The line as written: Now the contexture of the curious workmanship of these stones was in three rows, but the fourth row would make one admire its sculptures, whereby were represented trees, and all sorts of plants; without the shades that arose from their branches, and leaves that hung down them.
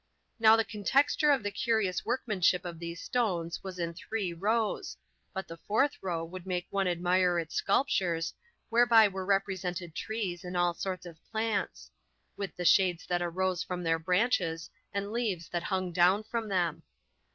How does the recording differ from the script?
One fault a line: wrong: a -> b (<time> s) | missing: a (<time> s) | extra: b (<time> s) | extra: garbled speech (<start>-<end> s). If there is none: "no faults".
wrong: without -> with (12.3 s)
extra: from (16.2 s)